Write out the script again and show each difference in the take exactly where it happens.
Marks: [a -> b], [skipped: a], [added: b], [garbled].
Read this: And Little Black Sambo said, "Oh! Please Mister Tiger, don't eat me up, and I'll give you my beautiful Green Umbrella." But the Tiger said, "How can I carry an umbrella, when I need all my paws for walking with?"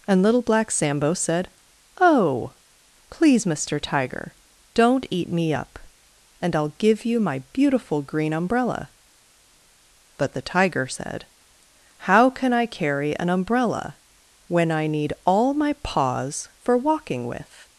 And Little Black Sambo said, "Oh! Please Mister Tiger, don't eat me up, and I'll give you my beautiful Green Umbrella." But the Tiger said, "How can I carry an umbrella, when I need all my paws for walking with?"